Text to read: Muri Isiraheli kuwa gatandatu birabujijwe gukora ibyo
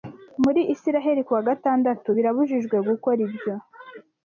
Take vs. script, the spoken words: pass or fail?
pass